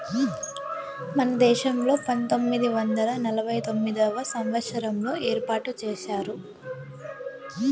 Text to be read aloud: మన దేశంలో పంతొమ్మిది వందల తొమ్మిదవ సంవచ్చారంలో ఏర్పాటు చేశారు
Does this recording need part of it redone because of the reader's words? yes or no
yes